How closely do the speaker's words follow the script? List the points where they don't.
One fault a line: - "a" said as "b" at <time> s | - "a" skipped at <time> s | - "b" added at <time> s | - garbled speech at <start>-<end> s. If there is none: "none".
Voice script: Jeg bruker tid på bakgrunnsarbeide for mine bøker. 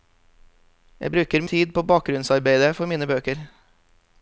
none